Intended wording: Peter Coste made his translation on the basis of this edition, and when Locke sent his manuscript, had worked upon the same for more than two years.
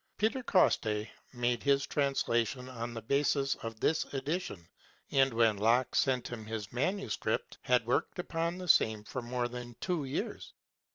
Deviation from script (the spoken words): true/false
true